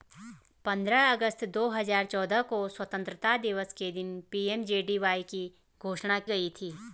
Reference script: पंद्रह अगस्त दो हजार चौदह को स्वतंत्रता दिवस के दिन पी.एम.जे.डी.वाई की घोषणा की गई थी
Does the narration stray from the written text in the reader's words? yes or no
yes